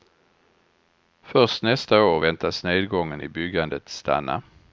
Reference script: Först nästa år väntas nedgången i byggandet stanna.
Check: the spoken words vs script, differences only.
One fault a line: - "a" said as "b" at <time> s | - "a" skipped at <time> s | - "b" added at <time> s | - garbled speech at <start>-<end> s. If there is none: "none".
none